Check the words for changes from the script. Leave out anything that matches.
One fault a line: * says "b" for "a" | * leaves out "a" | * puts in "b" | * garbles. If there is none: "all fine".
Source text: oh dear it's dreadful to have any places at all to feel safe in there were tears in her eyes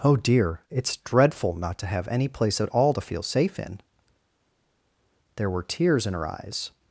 * puts in "not"
* says "place" for "places"